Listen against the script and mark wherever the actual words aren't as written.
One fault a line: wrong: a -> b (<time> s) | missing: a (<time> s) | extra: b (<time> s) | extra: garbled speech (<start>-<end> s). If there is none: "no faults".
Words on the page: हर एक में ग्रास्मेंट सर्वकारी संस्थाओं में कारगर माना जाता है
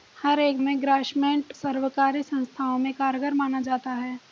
no faults